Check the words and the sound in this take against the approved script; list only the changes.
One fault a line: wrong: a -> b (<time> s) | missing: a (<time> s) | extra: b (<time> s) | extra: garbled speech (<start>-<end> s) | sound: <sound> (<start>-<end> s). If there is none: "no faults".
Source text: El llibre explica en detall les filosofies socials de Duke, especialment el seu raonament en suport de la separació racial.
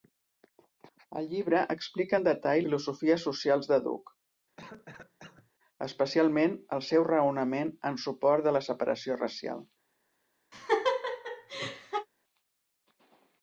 missing: les (2.6 s)
sound: cough (4.6-5.5 s)
sound: laugh (10.5-12.1 s)